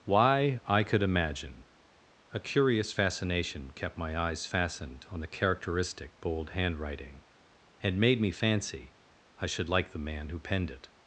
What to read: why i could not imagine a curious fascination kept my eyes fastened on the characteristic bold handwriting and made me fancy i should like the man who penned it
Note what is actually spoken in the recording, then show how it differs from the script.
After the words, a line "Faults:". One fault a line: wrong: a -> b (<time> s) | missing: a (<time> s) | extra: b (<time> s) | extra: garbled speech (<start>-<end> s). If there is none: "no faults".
why i could imagine a curious fascination kept my eyes fastened on the characteristic bold handwriting and made me fancy i should like the man who penned it
Faults:
missing: not (1.0 s)